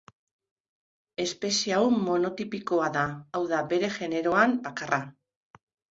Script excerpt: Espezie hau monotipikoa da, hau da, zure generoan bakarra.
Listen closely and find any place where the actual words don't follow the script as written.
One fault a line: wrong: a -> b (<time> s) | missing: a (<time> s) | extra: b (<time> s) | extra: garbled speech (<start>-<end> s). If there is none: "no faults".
wrong: zure -> bere (3.7 s)